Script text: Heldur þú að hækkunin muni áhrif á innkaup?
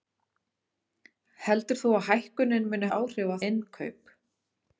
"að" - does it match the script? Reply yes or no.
yes